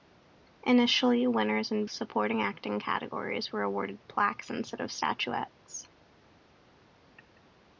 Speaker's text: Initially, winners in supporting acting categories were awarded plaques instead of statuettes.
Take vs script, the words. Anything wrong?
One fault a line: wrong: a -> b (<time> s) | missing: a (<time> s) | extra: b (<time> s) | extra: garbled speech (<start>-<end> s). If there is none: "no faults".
no faults